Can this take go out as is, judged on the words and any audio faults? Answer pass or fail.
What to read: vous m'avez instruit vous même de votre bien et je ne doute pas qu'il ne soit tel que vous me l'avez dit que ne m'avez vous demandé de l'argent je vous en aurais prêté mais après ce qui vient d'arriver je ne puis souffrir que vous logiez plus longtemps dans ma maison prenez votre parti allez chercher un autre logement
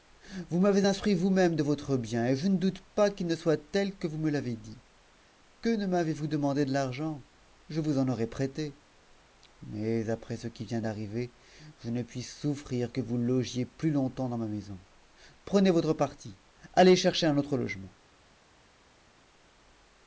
pass